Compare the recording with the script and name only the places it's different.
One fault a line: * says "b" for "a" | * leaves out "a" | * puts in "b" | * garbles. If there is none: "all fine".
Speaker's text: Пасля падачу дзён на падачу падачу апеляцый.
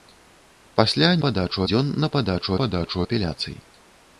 all fine